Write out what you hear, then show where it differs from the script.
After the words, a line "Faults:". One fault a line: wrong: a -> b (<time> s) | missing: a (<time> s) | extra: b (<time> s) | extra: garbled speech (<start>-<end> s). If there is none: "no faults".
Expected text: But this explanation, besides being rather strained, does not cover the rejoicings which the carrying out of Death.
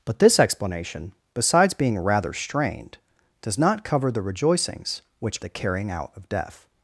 But this explanation, besides being rather strained, does not cover the rejoicings which the carrying out of Death.
Faults:
no faults